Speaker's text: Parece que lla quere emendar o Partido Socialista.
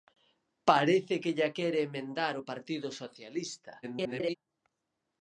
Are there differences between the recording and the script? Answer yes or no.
yes